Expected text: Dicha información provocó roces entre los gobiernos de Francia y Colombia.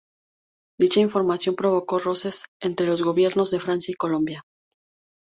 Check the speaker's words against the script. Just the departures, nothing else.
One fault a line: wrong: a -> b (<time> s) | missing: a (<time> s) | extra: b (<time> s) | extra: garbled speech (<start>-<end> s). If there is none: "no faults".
no faults